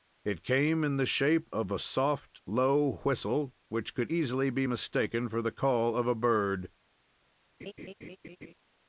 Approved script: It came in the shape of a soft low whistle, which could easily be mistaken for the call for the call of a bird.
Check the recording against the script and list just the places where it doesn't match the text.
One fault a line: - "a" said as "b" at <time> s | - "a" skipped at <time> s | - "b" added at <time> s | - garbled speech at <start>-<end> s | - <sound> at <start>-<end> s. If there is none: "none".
- "for the call" skipped at 6.0 s
- laugh at 7.6-8.5 s